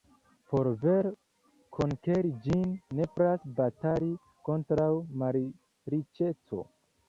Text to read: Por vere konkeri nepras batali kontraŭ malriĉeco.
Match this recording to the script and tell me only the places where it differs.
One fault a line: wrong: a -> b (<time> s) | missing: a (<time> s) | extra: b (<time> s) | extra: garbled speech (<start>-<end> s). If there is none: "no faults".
extra: ĝin (2.5 s)